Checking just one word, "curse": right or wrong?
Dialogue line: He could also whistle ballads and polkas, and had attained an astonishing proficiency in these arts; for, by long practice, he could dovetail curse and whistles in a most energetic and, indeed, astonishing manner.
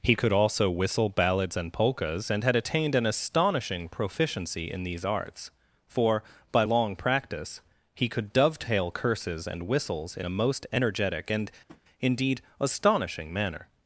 wrong